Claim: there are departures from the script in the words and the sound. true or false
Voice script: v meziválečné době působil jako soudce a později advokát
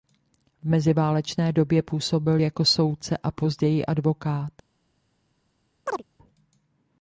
true